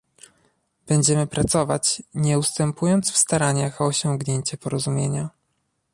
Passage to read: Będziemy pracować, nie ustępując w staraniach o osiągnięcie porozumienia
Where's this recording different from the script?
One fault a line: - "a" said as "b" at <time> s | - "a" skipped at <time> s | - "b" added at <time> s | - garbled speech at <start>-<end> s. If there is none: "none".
none